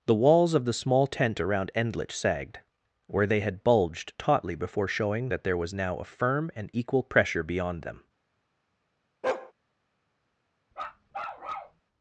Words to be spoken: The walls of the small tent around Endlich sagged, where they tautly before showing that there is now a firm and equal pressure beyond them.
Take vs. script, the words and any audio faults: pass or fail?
fail